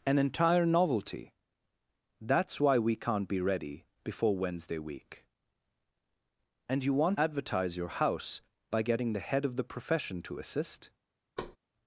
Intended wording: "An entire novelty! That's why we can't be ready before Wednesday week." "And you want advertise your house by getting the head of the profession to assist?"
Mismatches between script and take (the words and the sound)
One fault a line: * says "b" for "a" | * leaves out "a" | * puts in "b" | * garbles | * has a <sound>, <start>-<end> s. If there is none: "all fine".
* has a thud, 11.4-11.6 s